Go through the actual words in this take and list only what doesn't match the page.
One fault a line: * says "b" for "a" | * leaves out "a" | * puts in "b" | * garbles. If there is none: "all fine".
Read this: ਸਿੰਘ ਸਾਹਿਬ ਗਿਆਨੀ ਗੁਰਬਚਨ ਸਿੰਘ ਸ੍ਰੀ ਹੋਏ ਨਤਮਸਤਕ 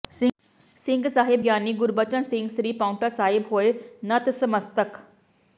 * puts in "ਪਾਉਂਟਾ ਸਾਹਿਬ"